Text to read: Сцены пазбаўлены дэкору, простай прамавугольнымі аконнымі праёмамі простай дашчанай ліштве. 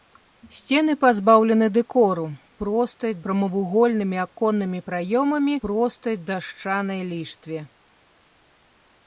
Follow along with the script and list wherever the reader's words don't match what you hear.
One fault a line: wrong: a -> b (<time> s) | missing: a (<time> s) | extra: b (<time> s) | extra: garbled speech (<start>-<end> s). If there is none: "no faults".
no faults